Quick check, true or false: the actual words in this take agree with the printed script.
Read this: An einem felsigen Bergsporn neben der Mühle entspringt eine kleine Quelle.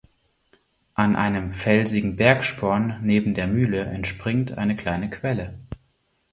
true